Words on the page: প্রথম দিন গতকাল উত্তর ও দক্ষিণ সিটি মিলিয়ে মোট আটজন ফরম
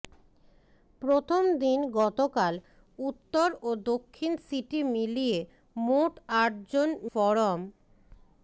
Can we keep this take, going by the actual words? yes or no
yes